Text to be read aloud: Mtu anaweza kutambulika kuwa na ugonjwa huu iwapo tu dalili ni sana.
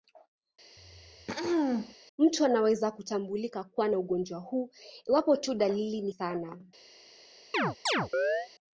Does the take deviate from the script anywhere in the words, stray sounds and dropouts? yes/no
yes